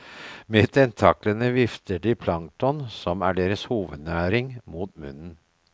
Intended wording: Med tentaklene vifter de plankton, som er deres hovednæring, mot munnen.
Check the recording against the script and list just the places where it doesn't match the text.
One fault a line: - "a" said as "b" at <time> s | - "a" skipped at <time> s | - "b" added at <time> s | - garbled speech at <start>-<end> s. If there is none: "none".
none